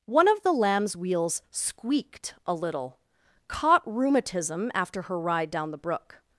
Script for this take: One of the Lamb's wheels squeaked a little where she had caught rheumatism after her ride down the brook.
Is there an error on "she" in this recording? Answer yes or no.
yes